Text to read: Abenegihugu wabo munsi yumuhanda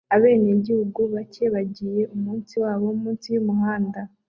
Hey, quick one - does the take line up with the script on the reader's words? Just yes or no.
no